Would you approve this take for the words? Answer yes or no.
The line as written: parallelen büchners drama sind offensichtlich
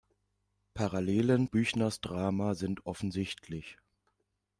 yes